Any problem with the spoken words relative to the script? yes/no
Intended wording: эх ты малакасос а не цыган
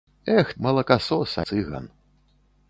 yes